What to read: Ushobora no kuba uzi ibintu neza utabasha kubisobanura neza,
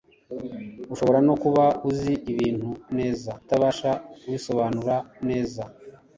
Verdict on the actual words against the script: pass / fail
pass